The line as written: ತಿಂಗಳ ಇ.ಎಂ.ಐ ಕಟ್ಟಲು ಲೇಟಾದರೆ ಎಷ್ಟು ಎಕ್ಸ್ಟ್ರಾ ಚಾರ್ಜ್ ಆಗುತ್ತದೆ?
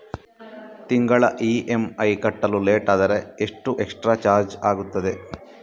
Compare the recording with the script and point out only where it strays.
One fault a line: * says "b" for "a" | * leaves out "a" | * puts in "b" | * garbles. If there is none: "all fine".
all fine